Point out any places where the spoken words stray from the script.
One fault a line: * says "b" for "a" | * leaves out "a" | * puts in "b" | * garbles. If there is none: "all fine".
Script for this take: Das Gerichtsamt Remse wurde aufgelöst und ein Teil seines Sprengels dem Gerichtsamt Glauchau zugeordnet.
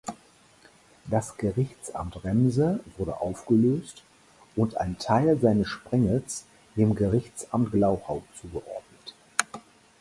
all fine